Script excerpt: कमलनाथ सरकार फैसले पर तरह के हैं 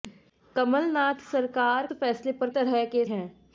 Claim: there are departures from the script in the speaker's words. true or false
false